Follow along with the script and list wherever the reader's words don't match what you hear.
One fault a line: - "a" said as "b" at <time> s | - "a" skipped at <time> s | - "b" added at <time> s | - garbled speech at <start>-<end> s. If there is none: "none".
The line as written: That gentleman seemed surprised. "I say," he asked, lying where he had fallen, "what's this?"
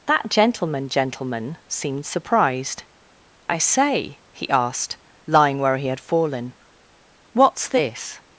- "gentleman" added at 0.9 s